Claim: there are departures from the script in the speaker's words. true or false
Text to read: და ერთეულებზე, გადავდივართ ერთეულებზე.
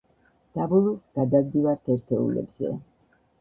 true